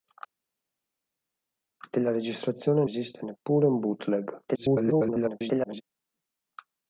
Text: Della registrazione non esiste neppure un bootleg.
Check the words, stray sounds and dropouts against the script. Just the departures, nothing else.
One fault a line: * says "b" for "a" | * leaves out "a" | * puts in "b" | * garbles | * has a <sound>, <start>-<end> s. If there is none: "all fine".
* leaves out "non"
* garbles